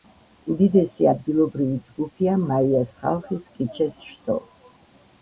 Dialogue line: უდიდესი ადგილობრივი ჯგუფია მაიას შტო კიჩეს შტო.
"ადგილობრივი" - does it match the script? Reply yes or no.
yes